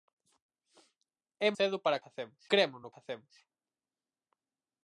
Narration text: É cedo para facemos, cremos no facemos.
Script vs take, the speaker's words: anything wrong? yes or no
no